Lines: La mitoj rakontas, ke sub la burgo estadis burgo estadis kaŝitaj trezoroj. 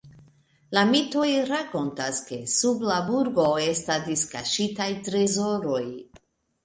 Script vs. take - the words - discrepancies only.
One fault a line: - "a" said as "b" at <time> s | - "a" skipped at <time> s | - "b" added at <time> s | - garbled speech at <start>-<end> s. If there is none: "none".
- "burgo estadis" skipped at 4.2 s